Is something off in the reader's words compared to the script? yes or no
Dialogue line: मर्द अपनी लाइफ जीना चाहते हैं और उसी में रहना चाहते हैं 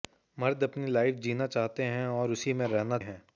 yes